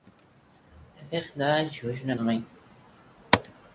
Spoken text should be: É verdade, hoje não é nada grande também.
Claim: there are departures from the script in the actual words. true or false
true